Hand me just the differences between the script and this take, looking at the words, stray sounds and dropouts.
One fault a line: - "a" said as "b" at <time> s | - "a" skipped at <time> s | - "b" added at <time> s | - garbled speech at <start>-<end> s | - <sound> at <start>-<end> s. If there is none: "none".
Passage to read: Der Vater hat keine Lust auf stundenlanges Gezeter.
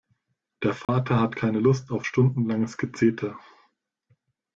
- dropout at 0.8-0.9 s